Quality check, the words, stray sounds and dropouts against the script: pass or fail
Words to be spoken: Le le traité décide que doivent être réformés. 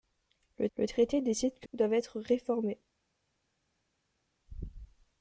pass